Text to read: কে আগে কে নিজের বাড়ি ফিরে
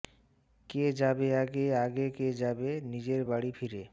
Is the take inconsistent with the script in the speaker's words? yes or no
yes